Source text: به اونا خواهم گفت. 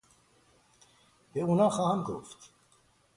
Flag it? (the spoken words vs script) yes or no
no